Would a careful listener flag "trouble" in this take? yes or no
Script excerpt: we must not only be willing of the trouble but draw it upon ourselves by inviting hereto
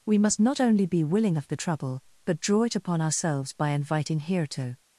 no